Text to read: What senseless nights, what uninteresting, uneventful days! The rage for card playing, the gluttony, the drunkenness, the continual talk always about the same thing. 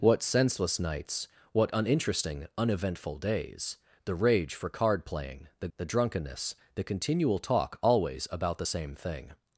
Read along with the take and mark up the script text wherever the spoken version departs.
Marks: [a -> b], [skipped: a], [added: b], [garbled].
What senseless nights, what uninteresting, uneventful days! The rage for card playing, the [skipped: gluttony,] the drunkenness, the continual talk always about the same thing.